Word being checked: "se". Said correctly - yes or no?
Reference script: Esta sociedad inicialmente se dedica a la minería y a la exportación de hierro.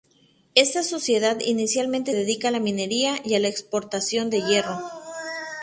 no